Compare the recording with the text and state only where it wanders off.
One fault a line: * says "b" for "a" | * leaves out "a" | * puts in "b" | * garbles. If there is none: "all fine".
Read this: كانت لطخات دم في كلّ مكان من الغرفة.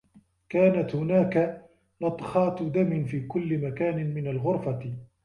* puts in "هناك"